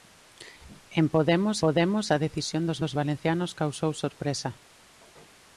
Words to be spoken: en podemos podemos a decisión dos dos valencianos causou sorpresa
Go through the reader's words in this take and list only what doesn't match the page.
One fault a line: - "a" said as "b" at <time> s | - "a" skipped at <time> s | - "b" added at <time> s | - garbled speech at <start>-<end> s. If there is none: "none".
none